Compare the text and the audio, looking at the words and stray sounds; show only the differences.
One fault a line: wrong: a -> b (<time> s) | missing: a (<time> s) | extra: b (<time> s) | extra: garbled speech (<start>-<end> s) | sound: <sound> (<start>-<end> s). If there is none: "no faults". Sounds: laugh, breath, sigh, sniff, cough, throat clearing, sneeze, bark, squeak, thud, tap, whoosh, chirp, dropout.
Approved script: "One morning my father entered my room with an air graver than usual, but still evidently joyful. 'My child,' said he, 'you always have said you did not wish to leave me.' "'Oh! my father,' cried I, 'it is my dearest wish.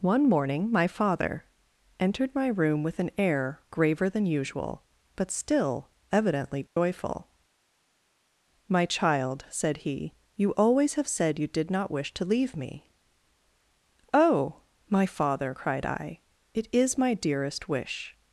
sound: dropout (6.7-6.8 s)